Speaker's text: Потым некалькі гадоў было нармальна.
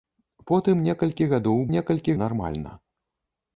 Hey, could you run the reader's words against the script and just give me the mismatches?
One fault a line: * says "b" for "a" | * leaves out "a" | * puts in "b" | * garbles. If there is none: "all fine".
* says "некалькі" for "было"